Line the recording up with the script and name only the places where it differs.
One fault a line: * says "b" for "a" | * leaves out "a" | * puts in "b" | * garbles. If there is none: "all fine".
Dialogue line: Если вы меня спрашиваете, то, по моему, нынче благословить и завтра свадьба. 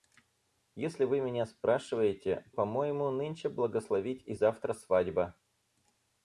* leaves out "то"